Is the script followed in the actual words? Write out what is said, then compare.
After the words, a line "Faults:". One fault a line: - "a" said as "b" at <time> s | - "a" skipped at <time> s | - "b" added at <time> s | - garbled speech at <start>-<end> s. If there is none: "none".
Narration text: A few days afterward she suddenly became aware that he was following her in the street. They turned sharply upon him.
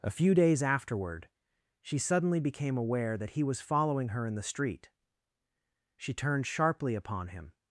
A few days afterward she suddenly became aware that he was following her in the street. She turned sharply upon him.
Faults:
- "They" said as "She" at 6.0 s